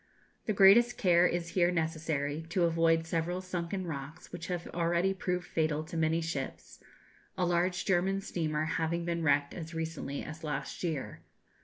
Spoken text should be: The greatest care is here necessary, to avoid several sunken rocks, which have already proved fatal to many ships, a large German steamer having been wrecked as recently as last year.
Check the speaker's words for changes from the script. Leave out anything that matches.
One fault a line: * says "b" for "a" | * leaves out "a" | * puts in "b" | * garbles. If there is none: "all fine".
all fine